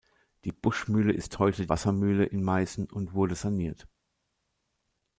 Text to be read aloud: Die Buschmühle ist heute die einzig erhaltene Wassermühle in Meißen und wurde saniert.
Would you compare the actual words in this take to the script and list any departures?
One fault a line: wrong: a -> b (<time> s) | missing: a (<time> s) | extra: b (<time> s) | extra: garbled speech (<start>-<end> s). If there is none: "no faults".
missing: die einzig erhaltene (1.7 s)